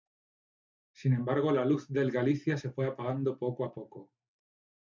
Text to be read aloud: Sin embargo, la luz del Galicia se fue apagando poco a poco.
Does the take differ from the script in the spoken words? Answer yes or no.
no